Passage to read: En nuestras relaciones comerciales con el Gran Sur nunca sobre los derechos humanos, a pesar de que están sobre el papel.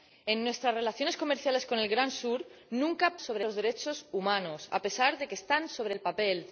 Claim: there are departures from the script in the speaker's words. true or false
false